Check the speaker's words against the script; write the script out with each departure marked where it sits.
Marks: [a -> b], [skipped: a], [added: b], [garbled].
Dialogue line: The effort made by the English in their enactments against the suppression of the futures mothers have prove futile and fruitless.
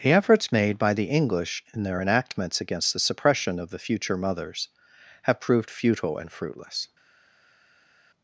The [effort -> efforts] made by the English in their enactments against the suppression of the [futures -> future] mothers have [prove -> proved] futile and fruitless.